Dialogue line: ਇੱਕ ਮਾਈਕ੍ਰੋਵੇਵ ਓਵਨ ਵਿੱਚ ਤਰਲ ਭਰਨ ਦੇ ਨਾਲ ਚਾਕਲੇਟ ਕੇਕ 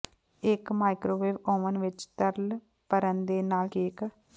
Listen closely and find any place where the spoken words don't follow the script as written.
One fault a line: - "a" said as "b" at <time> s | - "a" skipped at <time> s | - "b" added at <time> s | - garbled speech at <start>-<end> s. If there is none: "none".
- "ਚਾਕਲੇਟ" skipped at 3.7 s